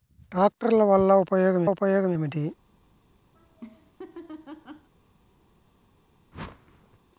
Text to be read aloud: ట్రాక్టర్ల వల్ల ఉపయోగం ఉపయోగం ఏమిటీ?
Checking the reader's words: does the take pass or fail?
pass